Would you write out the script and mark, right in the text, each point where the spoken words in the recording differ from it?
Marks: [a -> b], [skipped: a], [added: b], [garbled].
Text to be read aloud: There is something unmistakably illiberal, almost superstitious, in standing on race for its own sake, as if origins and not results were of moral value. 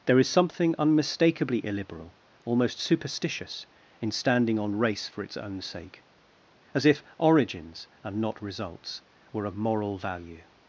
There is something unmistakably illiberal, almost superstitious, in standing on race for its own sake, as if origins and not results were of moral value.